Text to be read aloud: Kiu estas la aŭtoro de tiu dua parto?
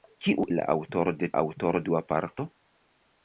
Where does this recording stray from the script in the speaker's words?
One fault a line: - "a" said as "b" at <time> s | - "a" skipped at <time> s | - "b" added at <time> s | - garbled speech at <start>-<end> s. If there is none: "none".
- "estas" skipped at 0.5 s
- "tiu" said as "aŭtoro" at 1.4 s